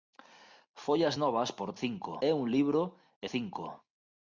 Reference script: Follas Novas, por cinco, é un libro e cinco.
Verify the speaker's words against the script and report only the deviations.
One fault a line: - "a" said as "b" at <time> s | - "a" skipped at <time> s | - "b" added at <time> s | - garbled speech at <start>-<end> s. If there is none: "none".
none